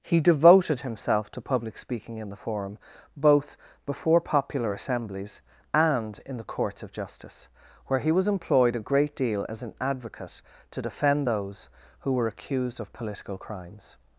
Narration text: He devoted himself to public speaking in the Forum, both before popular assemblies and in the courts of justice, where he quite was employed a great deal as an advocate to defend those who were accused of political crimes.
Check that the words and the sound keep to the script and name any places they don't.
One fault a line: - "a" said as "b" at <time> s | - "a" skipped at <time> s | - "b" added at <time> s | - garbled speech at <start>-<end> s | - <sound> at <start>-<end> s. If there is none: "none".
- "quite" skipped at 8.1 s